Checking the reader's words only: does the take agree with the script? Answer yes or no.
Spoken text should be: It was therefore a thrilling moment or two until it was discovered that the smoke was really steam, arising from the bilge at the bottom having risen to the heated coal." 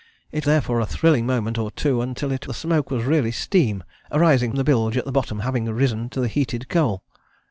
no